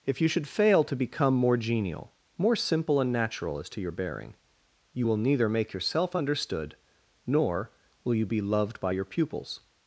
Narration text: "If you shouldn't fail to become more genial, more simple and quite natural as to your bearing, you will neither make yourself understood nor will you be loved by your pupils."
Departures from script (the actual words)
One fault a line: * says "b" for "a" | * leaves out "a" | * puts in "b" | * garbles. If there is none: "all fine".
* says "should" for "shouldn't"
* leaves out "quite"